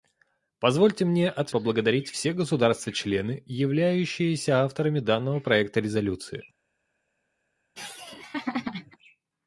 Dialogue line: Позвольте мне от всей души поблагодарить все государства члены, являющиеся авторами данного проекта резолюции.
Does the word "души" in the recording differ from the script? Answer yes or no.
yes